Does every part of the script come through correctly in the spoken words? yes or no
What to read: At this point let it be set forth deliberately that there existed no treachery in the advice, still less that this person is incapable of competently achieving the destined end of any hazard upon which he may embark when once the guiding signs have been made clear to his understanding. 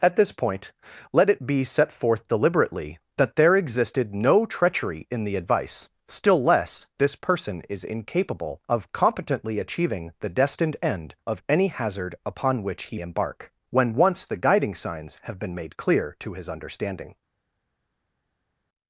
no